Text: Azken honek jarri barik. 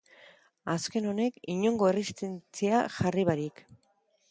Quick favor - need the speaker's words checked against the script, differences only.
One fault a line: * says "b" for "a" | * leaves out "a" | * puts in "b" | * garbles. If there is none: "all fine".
* puts in "inongo erresistentzia"